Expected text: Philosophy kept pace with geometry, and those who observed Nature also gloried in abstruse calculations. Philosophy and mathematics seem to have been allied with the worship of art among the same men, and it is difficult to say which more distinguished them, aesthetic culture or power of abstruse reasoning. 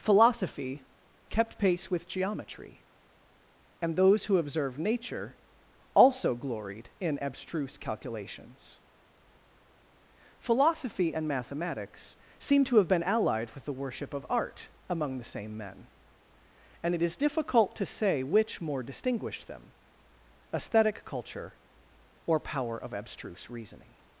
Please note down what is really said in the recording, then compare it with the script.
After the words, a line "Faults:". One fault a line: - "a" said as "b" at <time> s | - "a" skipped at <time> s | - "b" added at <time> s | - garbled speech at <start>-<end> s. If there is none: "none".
Philosophy kept pace with geometry, and those who observed Nature also gloried in abstruse calculations. Philosophy and mathematics seem to have been allied with the worship of art among the same men, and it is difficult to say which more distinguished them, aesthetic culture or power of abstruse reasoning.
Faults:
none